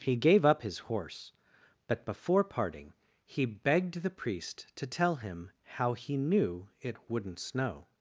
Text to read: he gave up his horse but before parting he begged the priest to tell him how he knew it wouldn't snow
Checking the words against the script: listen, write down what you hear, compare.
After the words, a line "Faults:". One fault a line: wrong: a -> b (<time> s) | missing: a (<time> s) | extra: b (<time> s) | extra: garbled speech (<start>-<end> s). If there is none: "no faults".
he gave up his horse but before parting he begged the priest to tell him how he knew it wouldn't snow
Faults:
no faults